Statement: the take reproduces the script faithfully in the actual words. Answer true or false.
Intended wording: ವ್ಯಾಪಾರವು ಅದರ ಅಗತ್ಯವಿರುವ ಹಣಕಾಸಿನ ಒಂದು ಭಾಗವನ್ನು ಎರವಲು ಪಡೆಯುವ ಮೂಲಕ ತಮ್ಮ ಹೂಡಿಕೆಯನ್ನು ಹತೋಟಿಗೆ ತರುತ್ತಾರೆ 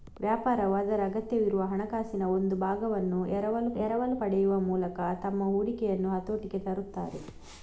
false